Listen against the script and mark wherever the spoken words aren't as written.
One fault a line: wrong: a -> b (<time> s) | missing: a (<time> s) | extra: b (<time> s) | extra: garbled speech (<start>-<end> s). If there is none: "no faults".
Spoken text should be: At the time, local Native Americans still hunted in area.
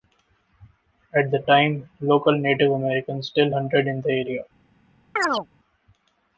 extra: the (4.0 s)